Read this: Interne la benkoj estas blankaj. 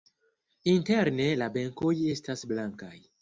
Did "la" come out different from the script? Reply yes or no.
no